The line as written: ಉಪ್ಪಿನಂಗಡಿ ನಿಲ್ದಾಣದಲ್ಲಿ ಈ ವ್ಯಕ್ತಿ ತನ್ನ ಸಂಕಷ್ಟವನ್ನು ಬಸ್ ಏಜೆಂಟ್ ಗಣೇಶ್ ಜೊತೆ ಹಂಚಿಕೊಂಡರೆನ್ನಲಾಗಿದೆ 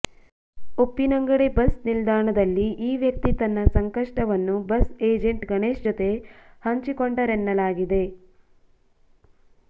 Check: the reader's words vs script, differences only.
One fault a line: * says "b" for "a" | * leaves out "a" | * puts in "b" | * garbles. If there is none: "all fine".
* puts in "ಬಸ್"